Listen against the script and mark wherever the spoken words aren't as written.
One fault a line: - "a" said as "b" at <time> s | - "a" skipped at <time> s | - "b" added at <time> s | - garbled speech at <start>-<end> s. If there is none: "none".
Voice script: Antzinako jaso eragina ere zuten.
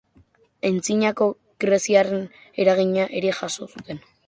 - "jaso" said as "greziarren" at 1.6 s
- "jaso" added at 3.4 s